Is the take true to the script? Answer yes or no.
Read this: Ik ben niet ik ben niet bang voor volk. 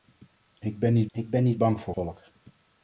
yes